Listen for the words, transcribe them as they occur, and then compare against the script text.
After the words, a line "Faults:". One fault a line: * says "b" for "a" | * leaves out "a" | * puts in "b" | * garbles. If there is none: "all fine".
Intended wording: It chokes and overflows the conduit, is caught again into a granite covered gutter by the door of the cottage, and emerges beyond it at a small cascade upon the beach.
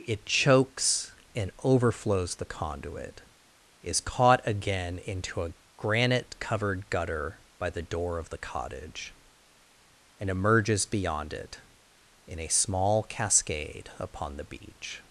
It chokes and overflows the conduit, is caught again into a granite covered gutter by the door of the cottage, and emerges beyond it in a small cascade upon the beach.
Faults:
* says "in" for "at"